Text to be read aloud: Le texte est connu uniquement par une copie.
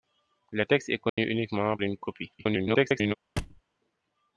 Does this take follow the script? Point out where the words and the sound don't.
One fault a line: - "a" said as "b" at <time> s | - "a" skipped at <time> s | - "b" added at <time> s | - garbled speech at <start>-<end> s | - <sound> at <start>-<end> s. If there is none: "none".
- dropout at 1.1-1.2 s
- "par" skipped at 1.8 s
- garbled speech at 2.4-3.1 s
- thud at 3.4-3.6 s